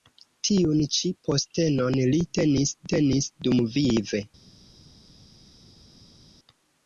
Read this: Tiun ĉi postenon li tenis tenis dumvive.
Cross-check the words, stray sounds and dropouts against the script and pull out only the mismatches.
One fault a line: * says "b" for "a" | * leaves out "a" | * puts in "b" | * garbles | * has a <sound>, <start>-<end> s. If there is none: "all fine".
all fine